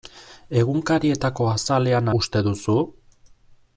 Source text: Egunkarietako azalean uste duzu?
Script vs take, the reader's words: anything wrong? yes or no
no